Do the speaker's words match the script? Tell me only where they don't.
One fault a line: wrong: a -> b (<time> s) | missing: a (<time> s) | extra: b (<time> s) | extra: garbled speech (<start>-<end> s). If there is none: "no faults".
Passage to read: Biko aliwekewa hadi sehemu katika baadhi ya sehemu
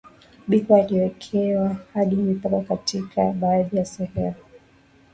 wrong: sehemu -> mipaka (2.1 s)